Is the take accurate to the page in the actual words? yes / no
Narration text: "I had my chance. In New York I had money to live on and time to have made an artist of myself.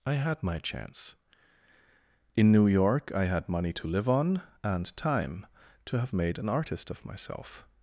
yes